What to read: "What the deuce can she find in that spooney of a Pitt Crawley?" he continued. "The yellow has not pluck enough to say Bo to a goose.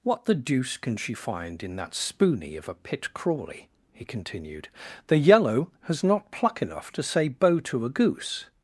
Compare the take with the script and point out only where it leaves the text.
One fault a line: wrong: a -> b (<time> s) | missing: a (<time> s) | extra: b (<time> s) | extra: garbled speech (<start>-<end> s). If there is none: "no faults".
no faults